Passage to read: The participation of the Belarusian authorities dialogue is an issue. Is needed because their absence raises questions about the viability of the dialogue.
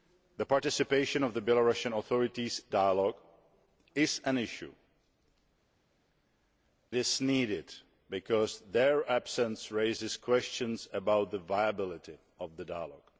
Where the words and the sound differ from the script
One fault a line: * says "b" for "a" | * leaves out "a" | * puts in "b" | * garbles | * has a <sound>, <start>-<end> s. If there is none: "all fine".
all fine